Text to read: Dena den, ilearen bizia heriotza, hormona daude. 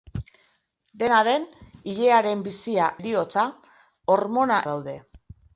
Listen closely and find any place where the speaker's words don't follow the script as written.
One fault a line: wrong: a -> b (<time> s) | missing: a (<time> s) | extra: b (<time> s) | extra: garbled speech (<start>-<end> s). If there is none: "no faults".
no faults